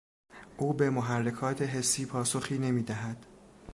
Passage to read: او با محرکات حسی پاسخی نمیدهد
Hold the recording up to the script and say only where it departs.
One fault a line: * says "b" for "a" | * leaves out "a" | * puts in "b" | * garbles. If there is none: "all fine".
* says "به" for "با"